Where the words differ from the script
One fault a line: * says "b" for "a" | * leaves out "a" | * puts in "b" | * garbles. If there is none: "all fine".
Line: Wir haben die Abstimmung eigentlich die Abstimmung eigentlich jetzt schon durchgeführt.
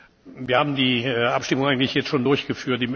* leaves out "die Abstimmung eigentlich"